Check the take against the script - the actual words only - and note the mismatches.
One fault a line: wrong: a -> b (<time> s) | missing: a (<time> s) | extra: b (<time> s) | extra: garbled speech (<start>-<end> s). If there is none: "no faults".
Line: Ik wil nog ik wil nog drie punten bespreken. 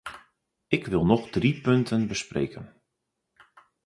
missing: ik wil nog (1.3 s)